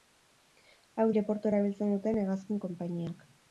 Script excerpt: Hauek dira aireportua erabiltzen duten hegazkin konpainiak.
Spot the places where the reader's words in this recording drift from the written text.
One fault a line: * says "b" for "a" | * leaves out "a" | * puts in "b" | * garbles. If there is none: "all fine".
* leaves out "dira"